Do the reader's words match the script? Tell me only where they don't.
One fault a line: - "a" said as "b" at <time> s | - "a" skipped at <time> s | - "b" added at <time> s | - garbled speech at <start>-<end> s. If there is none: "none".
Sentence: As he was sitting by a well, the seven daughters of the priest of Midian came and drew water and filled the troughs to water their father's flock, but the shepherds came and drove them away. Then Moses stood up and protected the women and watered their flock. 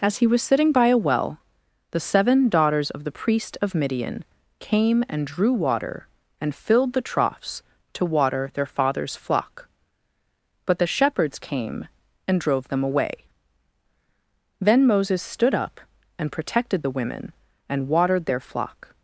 none